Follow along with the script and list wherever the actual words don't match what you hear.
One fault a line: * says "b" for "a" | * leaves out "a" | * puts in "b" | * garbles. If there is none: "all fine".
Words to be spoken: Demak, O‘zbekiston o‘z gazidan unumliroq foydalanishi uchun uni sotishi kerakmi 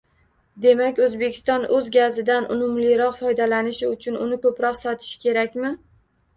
* puts in "ko‘proq"